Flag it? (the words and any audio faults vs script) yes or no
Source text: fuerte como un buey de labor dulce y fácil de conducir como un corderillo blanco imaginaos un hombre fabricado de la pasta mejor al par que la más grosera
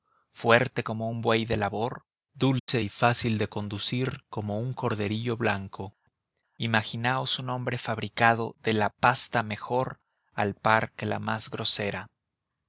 yes